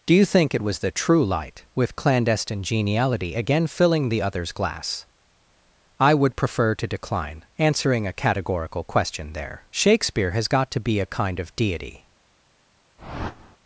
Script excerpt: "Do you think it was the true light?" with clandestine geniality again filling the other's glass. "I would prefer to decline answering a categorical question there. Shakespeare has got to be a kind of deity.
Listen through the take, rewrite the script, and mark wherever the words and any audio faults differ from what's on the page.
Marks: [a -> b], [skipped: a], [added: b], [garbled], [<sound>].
"Do you think it was the true light?" with clandestine geniality again filling the other's glass. "I would prefer to decline answering a categorical question there. Shakespeare has got to be a kind of deity. [whoosh]